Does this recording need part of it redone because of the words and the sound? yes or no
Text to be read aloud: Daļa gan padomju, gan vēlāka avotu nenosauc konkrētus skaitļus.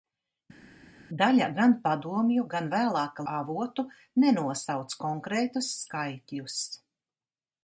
no